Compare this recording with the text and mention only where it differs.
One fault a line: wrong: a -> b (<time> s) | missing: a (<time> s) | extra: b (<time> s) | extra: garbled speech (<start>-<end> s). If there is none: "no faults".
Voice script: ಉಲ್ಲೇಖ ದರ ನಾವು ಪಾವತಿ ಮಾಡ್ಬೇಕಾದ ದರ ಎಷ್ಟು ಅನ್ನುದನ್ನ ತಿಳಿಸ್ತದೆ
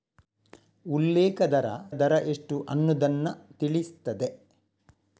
missing: ನಾವು ಪಾವತಿ ಮಾಡ್ಬೇಕಾದ (1.6 s)